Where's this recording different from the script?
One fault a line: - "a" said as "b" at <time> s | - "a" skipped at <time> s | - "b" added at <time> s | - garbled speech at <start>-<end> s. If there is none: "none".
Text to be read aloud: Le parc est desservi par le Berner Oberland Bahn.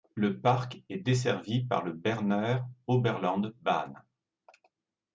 none